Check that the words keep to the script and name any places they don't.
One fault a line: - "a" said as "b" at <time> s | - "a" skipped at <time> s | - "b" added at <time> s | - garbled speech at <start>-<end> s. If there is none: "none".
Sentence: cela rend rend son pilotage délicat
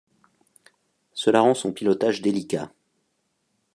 - "rend" skipped at 1.5 s